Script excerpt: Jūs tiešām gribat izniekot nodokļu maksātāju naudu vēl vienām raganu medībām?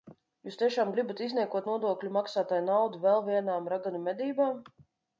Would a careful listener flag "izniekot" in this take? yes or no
no